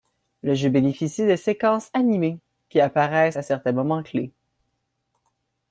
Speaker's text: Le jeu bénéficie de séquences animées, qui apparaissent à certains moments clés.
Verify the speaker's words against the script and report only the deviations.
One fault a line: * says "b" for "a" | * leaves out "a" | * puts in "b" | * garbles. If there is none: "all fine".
all fine